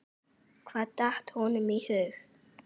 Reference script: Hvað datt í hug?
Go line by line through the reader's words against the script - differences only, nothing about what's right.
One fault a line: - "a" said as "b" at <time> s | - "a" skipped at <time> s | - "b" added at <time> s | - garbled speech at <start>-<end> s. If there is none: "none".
- "honum" added at 1.4 s